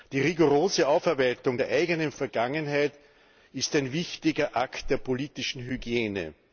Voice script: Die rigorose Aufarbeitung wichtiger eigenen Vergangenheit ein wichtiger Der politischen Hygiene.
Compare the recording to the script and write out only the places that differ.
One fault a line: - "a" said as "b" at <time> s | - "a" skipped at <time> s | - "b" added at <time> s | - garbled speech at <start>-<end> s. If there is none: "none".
- "wichtiger" said as "der" at 1.5 s
- "ist" added at 3.5 s
- "Akt" added at 4.5 s